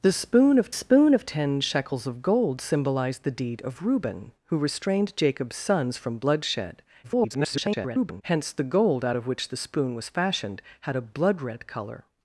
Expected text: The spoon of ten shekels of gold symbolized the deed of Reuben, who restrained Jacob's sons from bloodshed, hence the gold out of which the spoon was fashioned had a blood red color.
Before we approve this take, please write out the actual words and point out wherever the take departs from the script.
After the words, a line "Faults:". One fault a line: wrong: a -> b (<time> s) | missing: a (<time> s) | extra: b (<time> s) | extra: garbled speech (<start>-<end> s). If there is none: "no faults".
The spoon of spoon of ten shekels of gold symbolized the deed of Reuben, who restrained Jacob's sons from bloodshed, [garbled] hence the gold out of which the spoon was fashioned had a blood red color.
Faults:
extra: spoon of (0.7 s)
extra: garbled speech (7.0-8.2 s)